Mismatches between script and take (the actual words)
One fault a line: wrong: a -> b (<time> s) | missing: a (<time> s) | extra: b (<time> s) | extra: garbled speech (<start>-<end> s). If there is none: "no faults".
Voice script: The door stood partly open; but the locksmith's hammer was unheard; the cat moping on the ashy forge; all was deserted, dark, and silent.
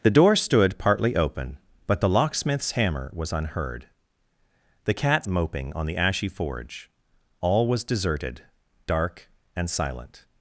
no faults